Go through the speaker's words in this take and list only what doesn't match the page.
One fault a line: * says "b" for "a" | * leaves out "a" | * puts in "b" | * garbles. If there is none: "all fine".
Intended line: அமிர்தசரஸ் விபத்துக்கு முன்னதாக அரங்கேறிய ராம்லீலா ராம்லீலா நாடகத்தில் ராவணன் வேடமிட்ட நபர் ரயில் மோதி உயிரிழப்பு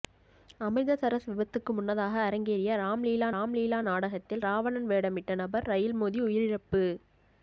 all fine